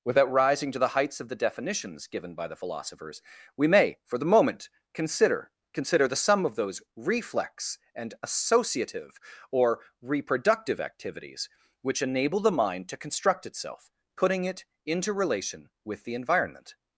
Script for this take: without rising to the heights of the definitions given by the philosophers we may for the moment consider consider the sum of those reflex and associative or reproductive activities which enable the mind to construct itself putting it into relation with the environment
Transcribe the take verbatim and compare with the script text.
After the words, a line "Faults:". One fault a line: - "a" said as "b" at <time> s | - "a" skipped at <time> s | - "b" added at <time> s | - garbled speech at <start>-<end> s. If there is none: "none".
without rising to the heights of the definitions given by the philosophers we may for the moment consider consider the sum of those reflex and associative or reproductive activities which enable the mind to construct itself putting it into relation with the environment
Faults:
none